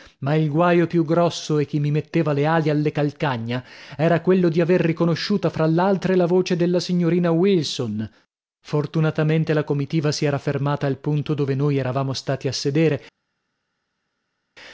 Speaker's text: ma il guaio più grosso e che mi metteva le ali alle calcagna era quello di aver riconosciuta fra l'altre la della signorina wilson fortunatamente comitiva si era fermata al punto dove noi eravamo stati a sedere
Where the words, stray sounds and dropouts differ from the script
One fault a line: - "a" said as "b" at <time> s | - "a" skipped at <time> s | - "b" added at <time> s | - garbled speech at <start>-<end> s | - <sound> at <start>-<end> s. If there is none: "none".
- "voce" added at 6.2 s
- "la" added at 9.5 s